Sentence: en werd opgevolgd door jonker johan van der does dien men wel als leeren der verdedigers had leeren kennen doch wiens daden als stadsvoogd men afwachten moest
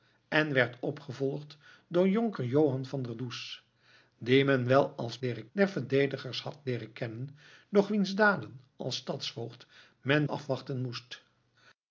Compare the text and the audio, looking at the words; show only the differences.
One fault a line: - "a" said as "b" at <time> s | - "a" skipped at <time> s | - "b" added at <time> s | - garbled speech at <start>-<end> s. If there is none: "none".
none